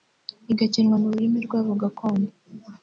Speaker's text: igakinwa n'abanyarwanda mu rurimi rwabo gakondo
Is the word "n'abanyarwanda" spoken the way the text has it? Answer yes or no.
no